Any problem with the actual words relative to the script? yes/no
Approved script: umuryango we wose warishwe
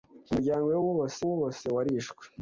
yes